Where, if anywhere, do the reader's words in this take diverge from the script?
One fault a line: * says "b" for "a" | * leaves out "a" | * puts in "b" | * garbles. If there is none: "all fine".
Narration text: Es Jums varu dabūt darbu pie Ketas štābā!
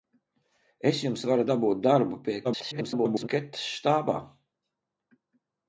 * garbles